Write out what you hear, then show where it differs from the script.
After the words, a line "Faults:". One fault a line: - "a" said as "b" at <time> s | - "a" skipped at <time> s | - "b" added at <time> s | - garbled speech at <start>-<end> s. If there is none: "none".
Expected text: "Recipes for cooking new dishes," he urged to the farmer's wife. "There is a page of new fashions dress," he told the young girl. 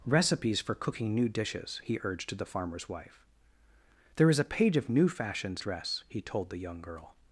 "Recipes for cooking new dishes," he urged to the farmer's wife. "There is a page of new fashions dress," he told the young girl.
Faults:
none